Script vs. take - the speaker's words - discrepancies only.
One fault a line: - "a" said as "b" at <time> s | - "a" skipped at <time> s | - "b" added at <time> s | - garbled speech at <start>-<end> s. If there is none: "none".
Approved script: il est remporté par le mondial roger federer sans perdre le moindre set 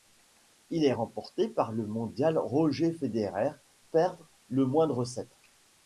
- "sans" skipped at 3.5 s